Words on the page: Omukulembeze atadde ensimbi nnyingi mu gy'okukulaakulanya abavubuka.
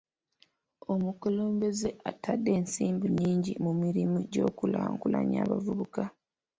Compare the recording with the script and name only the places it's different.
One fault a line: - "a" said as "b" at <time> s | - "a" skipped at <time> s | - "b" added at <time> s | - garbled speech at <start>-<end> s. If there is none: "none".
- "mirimu" added at 3.8 s